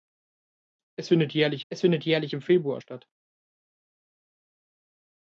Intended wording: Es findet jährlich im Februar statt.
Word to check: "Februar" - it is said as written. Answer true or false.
true